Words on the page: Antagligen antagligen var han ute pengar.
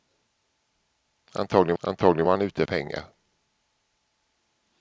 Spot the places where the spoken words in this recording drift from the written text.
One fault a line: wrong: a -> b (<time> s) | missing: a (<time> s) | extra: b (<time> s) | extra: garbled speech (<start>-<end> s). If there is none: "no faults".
no faults